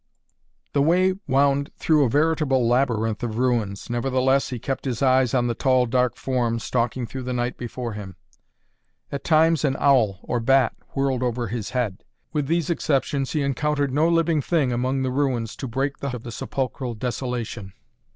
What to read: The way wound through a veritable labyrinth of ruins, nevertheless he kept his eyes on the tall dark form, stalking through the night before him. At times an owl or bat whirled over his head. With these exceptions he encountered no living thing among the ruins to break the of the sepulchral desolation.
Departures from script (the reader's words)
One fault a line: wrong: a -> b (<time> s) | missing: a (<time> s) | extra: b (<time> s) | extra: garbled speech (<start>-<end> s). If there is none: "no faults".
no faults